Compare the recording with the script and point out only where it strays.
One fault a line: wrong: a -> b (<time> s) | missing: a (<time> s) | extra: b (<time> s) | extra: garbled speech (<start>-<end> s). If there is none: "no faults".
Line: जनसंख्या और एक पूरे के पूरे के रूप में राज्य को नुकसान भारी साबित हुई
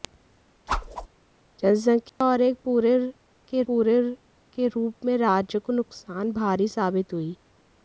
no faults